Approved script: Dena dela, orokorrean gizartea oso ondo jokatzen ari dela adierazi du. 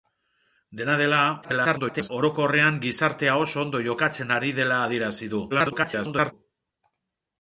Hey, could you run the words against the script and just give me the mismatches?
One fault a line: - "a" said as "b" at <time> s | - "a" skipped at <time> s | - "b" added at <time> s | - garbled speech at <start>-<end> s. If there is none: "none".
- garbled speech at 1.4-2.1 s
- garbled speech at 5.5-6.3 s